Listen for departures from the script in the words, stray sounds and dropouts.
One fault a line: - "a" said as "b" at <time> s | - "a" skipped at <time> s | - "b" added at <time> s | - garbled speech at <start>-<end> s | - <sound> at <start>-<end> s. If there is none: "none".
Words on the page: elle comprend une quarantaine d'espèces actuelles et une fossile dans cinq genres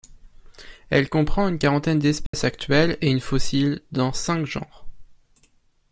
- dropout at 2.3-2.3 s